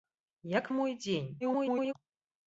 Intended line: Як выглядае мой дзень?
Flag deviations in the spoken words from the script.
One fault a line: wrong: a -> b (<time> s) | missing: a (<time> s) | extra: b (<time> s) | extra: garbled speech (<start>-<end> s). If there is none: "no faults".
missing: выглядае (0.7 s)
extra: garbled speech (1.4-1.9 s)